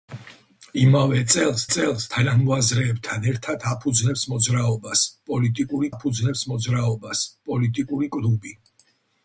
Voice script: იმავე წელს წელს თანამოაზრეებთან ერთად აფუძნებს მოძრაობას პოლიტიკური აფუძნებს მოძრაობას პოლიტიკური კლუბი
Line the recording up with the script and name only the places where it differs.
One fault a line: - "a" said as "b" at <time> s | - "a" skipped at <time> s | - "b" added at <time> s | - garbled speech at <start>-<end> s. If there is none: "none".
none